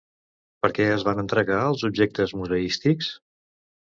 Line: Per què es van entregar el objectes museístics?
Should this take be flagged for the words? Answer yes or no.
yes